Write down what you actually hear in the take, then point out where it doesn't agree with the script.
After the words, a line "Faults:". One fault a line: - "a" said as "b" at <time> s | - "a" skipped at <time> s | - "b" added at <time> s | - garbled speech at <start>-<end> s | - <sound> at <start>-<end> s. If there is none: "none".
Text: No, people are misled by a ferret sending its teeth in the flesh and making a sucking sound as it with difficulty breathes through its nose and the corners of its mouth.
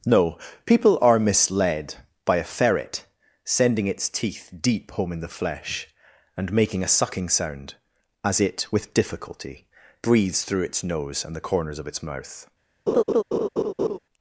No, people are misled by a ferret sending its teeth deep home in the flesh and making a sucking sound as it with difficulty breathes through its nose and the corners of its mouth.
Faults:
- "deep home" added at 4.6 s
- laugh at 12.9-14.0 s